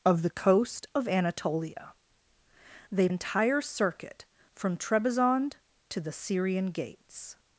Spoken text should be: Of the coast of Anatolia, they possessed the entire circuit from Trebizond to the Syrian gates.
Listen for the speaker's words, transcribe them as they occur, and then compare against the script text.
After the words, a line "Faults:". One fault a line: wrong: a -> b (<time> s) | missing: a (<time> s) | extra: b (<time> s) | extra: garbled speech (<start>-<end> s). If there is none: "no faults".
Of the coast of Anatolia, they entire circuit from Trebizond to the Syrian gates.
Faults:
missing: possessed the (3.1 s)